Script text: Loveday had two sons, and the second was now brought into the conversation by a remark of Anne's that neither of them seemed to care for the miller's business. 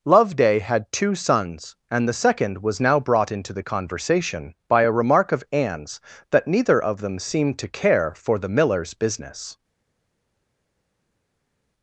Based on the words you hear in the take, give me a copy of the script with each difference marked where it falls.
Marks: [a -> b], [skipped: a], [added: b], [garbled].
Loveday had two sons, and the second was now brought into the conversation by a remark of Anne's that neither of them seemed to care for the miller's business.